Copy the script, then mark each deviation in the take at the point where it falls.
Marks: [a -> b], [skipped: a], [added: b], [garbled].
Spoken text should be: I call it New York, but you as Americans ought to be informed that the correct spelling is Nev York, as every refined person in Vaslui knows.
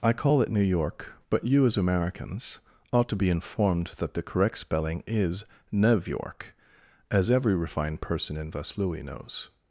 I call it New York, but you as Americans ought to be informed that the correct spelling is Nev York, as every refined person in Vaslui knows.